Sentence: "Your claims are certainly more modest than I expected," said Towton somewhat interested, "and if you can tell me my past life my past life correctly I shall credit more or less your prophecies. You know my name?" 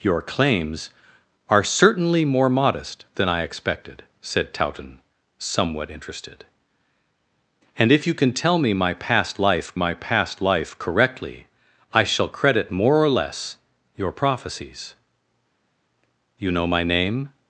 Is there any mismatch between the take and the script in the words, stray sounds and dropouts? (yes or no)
no